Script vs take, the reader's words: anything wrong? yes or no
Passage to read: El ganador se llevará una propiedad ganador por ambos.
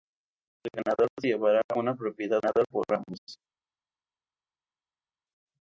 no